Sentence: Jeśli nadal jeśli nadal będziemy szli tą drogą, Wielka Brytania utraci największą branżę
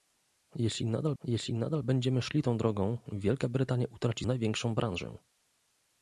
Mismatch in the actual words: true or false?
false